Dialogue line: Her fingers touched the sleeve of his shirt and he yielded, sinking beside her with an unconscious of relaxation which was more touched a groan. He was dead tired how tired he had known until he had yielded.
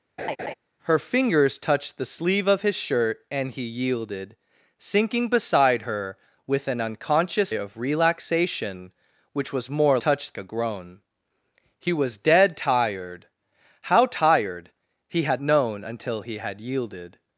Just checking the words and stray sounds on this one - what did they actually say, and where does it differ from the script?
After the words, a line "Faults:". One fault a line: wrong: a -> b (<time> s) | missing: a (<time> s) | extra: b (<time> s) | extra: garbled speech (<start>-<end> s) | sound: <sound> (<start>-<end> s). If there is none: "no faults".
Her fingers touched the sleeve of his shirt and he yielded, sinking beside her with an unconscious of relaxation which was more touched a groan. He was dead tired how tired he had known until he had yielded.
Faults:
sound: laugh (0.2-0.5 s)